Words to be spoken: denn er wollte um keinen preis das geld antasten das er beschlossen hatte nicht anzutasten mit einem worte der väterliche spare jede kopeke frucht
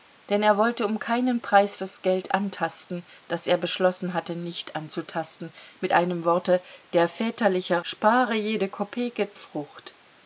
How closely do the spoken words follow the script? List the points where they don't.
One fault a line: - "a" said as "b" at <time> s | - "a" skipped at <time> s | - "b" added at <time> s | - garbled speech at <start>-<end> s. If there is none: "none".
none